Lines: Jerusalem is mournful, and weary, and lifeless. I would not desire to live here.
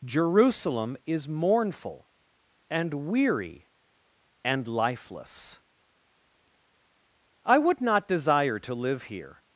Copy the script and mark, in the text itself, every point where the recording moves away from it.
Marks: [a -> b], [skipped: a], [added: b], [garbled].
Jerusalem is mournful, and weary, and lifeless. I would not desire to live here.